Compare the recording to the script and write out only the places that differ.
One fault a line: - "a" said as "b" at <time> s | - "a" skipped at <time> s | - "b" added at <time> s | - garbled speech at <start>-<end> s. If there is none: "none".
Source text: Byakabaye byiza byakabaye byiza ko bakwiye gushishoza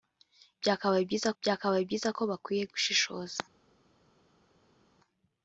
none